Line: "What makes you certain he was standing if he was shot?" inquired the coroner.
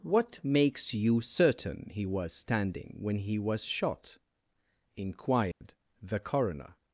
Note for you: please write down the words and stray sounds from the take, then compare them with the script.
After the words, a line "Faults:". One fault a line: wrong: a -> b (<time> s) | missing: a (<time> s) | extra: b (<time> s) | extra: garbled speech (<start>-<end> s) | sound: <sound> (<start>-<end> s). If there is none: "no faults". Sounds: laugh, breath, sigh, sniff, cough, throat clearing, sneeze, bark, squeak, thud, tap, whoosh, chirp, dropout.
"What makes you certain he was standing when he was shot?" inquired the coroner.
Faults:
wrong: if -> when (3.0 s)
sound: dropout (5.5-5.6 s)